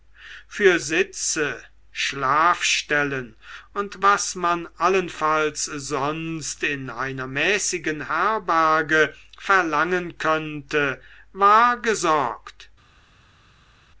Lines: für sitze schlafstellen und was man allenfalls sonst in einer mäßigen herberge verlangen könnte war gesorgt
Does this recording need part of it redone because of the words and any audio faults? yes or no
no